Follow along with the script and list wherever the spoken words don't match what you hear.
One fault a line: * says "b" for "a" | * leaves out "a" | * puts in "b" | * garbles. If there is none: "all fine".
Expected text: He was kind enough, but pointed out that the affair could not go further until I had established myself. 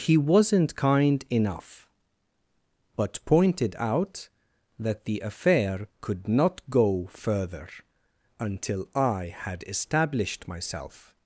* says "wasn't" for "was"